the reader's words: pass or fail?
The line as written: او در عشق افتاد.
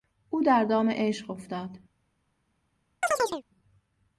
fail